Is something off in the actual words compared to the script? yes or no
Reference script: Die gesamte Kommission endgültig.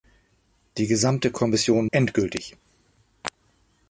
no